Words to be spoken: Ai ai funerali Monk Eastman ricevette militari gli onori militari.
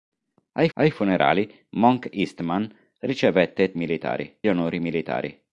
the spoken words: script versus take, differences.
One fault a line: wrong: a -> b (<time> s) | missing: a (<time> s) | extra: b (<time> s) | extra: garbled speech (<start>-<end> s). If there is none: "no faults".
no faults